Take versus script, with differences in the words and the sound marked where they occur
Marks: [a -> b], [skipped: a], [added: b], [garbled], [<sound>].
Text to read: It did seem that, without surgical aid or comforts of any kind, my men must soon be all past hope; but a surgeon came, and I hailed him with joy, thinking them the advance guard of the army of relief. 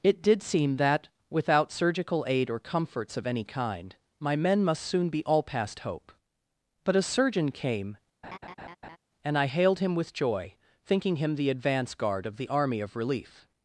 It did seem that, without surgical aid or comforts of any kind, my men must soon be all past hope; but a surgeon came, [laugh] and I hailed him with joy, thinking [them -> him] the advance guard of the army of relief.